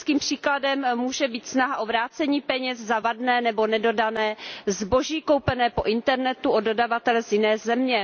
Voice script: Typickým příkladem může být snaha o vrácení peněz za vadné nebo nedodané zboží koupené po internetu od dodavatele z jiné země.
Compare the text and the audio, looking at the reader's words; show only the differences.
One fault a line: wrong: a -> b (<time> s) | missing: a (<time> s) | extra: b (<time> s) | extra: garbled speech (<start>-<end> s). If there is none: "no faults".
no faults